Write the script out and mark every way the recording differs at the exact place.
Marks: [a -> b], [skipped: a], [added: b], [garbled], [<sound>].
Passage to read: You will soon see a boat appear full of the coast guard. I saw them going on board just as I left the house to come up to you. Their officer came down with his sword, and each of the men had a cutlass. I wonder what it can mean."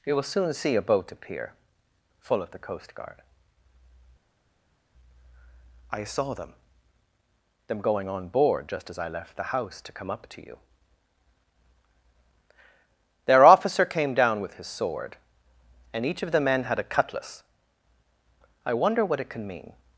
You will soon see a boat appear full of the coast guard. I saw them [added: them] going on board just as I left the house to come up to you. Their officer came down with his sword, and each of the men had a cutlass. I wonder what it can mean."